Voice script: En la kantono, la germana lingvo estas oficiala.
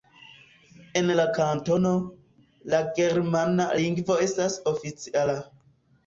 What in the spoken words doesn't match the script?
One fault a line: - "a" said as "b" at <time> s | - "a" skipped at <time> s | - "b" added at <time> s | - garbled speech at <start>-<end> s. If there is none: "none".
none